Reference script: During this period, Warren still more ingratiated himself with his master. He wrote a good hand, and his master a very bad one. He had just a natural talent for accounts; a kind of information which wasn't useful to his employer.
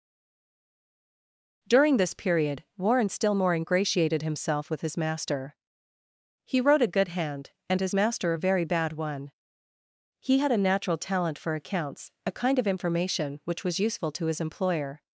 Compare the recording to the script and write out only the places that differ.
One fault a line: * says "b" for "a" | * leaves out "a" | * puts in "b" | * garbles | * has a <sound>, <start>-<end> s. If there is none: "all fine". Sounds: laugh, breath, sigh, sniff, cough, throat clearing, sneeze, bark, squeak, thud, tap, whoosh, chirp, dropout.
* leaves out "just"
* says "was" for "wasn't"